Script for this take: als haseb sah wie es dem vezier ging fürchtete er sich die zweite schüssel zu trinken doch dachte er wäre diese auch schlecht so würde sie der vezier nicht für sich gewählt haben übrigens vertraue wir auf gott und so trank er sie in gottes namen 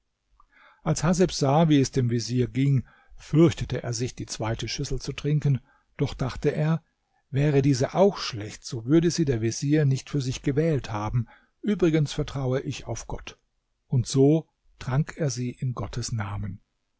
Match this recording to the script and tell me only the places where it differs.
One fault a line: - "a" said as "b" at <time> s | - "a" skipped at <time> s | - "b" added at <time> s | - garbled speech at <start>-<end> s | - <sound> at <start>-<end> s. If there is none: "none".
- "wir" said as "ich" at 12.6 s